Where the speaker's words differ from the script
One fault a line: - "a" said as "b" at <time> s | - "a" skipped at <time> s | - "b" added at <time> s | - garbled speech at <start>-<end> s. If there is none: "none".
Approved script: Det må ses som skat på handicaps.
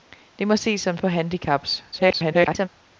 - "skat" skipped at 1.0 s
- garbled speech at 1.9-2.7 s